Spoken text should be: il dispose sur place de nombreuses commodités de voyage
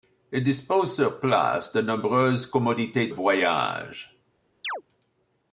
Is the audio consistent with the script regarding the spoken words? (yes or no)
no